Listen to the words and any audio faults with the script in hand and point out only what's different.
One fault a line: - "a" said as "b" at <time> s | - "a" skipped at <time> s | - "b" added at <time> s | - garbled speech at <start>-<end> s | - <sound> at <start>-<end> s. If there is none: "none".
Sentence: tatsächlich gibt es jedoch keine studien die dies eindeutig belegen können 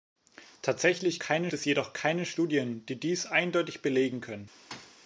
- "gibt" said as "keine" at 1.2 s
- thud at 4.7-5.0 s